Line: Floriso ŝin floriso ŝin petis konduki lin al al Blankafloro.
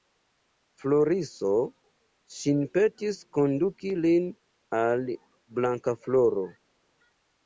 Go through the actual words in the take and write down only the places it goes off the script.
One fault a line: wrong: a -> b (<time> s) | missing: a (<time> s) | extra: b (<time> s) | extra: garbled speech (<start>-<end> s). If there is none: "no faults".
missing: floriso ŝin (2.6 s)
missing: al (5.0 s)